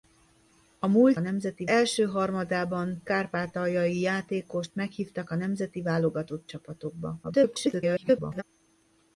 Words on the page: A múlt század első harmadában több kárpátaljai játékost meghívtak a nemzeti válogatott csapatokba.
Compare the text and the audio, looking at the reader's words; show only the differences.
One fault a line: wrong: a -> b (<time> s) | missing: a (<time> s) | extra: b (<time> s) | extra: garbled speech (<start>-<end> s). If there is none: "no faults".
wrong: század -> nemzeti (1.2 s)
missing: több (3.0 s)
extra: garbled speech (7.2-8.4 s)